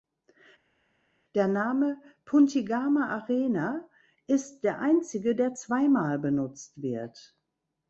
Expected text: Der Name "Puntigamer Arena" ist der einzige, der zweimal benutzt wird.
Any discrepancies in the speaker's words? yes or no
no